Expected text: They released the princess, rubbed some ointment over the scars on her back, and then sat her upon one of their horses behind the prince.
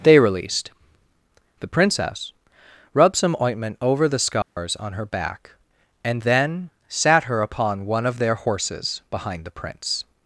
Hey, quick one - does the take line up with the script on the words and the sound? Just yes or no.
no